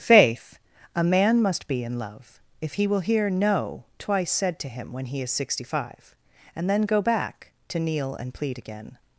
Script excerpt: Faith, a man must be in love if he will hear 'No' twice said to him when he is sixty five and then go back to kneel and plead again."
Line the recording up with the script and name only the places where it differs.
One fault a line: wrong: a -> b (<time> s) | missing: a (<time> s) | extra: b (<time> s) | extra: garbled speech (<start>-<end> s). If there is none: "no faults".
no faults